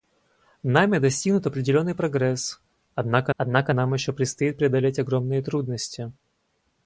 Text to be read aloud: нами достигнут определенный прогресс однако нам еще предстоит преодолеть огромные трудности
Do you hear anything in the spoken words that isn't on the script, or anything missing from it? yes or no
yes